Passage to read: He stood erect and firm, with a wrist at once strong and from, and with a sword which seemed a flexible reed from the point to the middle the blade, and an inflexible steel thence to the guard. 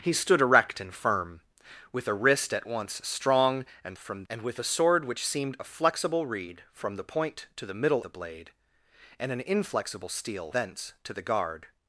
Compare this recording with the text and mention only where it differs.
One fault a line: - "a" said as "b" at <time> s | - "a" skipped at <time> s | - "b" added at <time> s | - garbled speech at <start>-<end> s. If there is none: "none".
none